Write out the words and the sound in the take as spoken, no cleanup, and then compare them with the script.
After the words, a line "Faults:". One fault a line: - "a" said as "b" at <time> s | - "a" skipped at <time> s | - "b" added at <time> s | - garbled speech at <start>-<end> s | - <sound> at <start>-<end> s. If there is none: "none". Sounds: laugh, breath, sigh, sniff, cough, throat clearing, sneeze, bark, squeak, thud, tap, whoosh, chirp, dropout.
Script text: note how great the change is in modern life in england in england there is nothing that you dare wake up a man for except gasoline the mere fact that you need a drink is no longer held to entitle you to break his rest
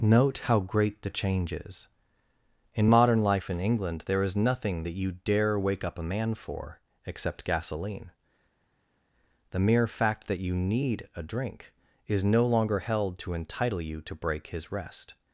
note how great the change is in modern life in england there is nothing that you dare wake up a man for except gasoline the mere fact that you need a drink is no longer held to entitle you to break his rest
Faults:
- "in england" skipped at 4.0 s